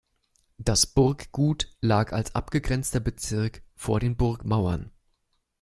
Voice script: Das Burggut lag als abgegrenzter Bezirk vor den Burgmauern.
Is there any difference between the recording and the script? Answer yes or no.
no